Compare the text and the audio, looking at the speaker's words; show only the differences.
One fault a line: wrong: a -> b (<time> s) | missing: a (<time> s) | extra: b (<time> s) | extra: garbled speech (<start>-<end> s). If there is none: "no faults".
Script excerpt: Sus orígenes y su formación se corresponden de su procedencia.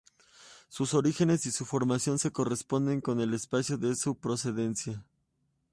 extra: con el espacio (3.0 s)